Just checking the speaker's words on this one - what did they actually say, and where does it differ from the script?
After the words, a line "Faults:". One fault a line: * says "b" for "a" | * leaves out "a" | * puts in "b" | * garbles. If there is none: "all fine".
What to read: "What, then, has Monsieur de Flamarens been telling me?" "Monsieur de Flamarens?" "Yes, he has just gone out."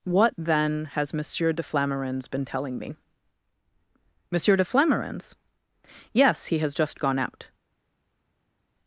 "What, then, has Monsieur de Flamarens been telling me?" "Monsieur de Flamarens?" "Yes, he has just gone out."
Faults:
all fine